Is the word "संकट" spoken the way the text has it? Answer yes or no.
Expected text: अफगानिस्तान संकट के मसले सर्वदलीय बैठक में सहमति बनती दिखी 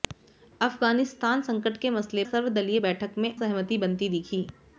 yes